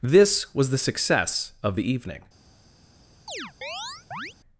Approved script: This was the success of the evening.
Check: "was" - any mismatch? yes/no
no